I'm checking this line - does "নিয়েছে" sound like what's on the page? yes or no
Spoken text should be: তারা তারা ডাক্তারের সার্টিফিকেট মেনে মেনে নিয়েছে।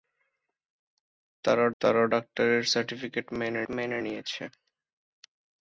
yes